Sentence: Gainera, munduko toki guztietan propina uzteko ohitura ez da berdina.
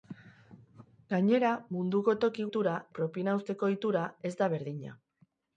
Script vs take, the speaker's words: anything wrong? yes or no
yes